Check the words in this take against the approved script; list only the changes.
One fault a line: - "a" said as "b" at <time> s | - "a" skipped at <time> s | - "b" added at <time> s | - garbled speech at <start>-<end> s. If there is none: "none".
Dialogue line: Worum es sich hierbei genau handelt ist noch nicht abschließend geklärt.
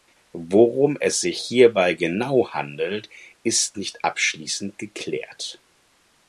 - "noch" skipped at 3.8 s